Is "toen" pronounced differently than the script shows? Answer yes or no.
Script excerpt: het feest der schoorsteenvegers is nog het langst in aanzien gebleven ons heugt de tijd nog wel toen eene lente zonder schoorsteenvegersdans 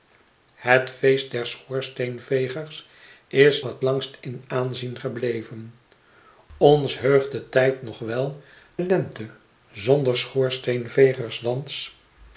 yes